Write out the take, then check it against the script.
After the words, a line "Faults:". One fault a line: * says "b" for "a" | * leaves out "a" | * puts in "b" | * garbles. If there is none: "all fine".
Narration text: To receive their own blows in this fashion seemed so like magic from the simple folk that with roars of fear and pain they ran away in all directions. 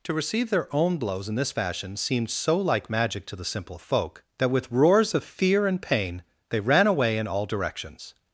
To receive their own blows in this fashion seemed so like magic to the simple folk that with roars of fear and pain they ran away in all directions.
Faults:
* says "to" for "from"